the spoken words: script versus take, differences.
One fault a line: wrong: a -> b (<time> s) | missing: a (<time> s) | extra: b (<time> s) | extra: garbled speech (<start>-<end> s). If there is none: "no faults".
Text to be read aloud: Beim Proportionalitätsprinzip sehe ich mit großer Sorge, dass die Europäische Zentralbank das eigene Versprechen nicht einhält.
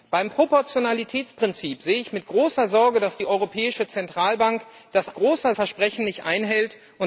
wrong: eigene -> großer (5.1 s)